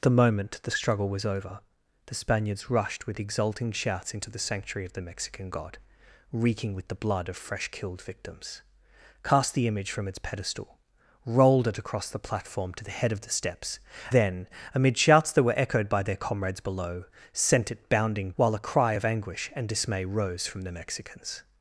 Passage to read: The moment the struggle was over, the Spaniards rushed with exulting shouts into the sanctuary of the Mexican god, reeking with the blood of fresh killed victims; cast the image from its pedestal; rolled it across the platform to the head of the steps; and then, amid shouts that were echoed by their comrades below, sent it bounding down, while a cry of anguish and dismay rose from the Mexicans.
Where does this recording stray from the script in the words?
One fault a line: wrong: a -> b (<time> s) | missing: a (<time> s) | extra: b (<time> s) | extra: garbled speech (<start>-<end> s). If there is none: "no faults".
missing: and (13.8 s)
missing: down (18.3 s)